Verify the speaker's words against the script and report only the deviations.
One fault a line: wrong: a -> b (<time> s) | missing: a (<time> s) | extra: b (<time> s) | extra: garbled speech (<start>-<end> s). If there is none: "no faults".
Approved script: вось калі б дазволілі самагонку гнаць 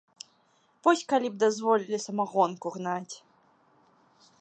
no faults